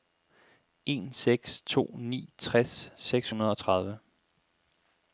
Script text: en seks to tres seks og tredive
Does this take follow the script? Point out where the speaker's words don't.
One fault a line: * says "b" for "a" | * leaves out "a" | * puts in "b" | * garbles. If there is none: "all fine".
* puts in "ni"
* puts in "hundrede"